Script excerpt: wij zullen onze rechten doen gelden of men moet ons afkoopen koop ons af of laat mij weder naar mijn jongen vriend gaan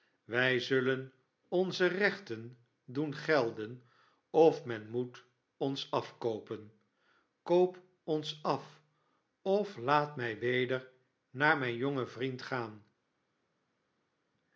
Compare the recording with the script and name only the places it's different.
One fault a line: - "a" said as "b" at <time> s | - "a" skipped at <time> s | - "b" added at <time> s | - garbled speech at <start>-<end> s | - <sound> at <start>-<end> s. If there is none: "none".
none